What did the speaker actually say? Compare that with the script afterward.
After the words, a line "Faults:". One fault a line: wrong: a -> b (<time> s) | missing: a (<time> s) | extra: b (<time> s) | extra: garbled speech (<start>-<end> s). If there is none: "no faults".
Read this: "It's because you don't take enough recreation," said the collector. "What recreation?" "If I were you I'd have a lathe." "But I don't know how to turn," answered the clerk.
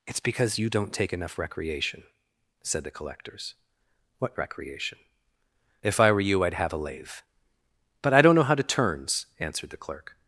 "It's because you don't take enough recreation," said the collectors. "What recreation?" "If I were you I'd have a lathe." "But I don't know how to turns," answered the clerk.
Faults:
wrong: collector -> collectors (2.9 s)
wrong: turn -> turns (8.6 s)